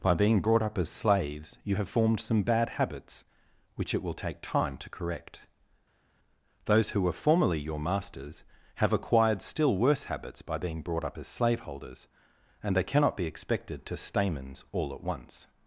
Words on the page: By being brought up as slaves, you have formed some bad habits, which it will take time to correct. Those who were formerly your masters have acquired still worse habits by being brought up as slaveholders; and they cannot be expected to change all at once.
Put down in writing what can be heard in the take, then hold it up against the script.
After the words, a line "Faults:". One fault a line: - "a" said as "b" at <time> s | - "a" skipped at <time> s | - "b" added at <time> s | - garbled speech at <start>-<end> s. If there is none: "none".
By being brought up as slaves, you have formed some bad habits, which it will take time to correct. Those who were formerly your masters have acquired still worse habits by being brought up as slaveholders; and they cannot be expected to stamens all at once.
Faults:
- "change" said as "stamens" at 14.0 s